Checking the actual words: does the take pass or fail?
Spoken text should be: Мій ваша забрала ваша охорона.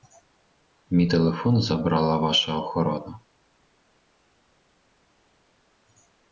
fail